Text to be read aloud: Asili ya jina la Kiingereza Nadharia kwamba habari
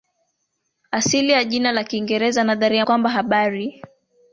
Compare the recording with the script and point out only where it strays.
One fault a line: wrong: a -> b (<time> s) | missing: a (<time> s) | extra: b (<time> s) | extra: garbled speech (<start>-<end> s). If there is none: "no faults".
no faults